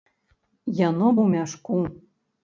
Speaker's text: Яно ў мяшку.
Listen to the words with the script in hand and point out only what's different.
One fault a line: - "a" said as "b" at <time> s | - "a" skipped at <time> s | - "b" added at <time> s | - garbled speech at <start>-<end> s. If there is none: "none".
none